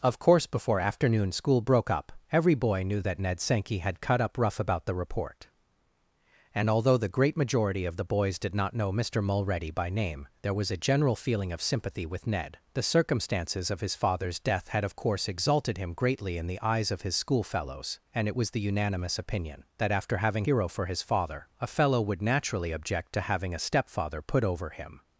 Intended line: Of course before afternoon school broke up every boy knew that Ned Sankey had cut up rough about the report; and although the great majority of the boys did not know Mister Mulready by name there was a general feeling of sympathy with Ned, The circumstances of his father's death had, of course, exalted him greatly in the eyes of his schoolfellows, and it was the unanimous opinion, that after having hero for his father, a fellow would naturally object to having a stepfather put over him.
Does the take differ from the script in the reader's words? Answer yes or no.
no